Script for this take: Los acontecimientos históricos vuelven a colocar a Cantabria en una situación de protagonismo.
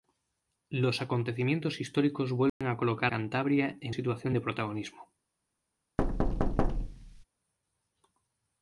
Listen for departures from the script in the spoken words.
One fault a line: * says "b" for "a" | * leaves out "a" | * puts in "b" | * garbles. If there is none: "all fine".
* leaves out "a"
* leaves out "una"